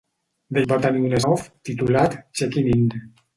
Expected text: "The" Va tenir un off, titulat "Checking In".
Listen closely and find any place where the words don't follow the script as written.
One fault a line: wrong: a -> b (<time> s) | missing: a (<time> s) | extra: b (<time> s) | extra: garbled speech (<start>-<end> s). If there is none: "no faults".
no faults